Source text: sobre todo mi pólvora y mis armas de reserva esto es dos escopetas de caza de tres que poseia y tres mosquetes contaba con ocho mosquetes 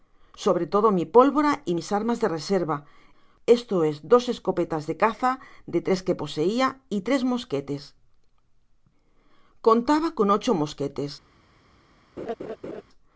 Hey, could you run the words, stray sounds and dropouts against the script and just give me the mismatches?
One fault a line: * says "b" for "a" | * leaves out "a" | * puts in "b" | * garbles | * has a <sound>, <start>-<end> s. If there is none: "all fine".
* has a laugh, 12.2-12.8 s